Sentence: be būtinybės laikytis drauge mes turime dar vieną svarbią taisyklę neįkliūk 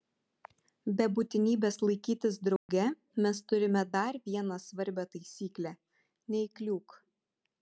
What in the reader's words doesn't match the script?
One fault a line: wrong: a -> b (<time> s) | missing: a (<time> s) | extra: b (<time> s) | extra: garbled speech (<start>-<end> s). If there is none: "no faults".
no faults